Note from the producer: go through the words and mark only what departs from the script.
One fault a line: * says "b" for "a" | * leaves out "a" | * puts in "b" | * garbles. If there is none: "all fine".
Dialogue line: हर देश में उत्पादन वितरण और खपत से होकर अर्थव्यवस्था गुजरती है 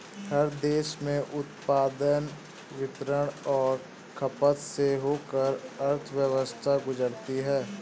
all fine